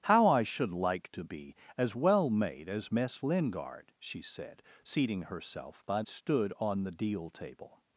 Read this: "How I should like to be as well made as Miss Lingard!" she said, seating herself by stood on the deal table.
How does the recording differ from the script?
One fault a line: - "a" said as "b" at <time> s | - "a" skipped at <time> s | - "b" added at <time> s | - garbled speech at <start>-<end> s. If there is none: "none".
none